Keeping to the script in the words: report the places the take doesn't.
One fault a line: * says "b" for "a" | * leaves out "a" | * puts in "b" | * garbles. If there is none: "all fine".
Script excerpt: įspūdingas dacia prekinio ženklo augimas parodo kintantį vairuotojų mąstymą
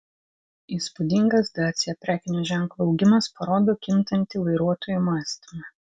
all fine